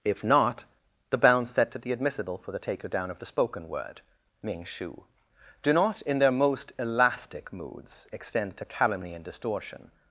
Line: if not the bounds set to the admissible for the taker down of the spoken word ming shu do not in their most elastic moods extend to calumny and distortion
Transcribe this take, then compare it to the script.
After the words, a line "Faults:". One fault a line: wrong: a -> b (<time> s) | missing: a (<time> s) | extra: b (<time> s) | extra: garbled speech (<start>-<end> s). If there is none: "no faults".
if not the bounds set to the admissible for the taker down of the spoken word ming shu do not in their most elastic moods extend to calumny and distortion
Faults:
no faults